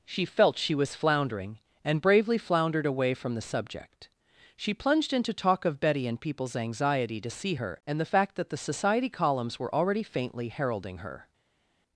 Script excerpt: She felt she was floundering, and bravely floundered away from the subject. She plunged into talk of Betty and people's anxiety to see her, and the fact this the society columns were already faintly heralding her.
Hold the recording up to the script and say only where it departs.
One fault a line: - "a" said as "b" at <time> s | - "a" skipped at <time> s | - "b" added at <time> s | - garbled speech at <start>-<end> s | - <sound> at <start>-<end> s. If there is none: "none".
- "this" said as "that" at 8.3 s